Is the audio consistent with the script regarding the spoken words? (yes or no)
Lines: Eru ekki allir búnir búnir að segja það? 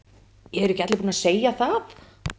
no